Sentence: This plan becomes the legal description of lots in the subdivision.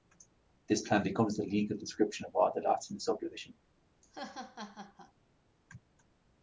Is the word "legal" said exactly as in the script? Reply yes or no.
yes